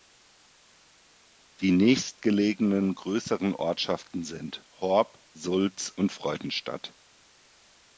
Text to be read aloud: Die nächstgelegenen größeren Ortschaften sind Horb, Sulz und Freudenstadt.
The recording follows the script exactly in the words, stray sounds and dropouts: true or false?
true